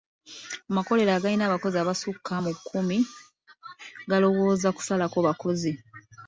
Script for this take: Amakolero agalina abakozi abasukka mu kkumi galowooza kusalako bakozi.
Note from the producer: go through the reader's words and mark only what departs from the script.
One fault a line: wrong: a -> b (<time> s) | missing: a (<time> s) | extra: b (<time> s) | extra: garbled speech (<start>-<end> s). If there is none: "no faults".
no faults